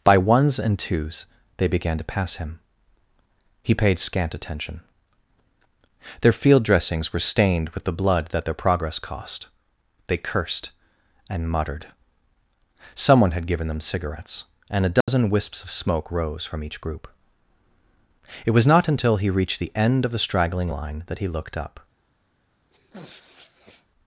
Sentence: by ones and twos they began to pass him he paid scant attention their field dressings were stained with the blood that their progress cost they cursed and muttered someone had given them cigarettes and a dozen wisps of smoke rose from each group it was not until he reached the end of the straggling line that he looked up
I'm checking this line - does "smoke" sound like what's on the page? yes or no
yes